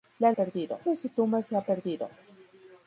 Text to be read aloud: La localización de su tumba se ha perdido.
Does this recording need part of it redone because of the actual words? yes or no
yes